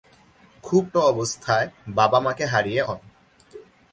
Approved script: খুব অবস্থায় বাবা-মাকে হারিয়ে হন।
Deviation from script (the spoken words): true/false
false